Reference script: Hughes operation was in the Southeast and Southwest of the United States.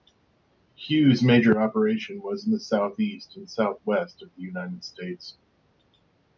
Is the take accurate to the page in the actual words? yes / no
no